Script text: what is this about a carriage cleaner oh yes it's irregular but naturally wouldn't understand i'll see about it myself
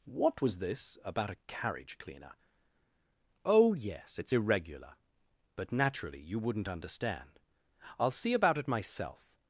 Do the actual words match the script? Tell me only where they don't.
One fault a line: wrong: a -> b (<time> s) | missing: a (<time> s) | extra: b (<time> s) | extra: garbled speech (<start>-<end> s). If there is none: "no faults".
wrong: is -> was (0.4 s)
extra: you (6.2 s)